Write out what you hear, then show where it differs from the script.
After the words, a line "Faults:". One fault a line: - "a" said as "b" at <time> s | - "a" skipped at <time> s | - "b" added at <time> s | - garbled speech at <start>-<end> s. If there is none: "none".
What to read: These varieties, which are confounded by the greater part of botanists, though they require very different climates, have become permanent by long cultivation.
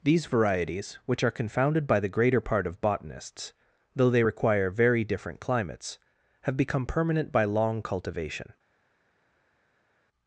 These varieties, which are confounded by the greater part of botanists, though they require very different climates, have become permanent by long cultivation.
Faults:
none